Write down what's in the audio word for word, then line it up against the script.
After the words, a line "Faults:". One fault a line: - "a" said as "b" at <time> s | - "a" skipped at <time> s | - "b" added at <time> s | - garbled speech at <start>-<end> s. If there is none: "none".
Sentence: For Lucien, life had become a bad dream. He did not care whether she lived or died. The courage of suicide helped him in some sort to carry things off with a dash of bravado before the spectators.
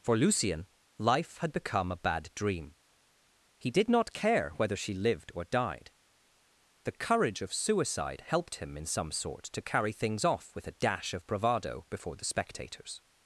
For Lucien, life had become a bad dream. He did not care whether she lived or died. The courage of suicide helped him in some sort to carry things off with a dash of bravado before the spectators.
Faults:
none